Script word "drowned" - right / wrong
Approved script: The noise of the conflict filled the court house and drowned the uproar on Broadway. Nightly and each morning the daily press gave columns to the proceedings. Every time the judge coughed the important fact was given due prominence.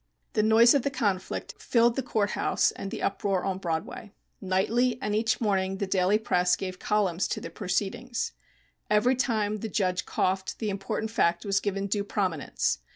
wrong